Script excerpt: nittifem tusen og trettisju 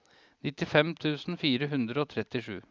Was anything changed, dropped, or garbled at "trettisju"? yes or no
no